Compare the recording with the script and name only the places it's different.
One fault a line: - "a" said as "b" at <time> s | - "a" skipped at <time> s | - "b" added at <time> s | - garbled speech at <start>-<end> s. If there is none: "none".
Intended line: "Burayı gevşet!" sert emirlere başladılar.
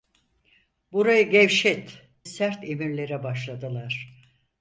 none